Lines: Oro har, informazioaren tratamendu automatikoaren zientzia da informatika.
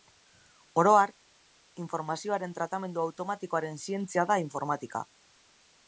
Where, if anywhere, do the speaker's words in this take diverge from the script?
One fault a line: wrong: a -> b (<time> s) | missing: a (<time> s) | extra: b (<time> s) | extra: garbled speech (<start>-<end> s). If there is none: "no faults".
no faults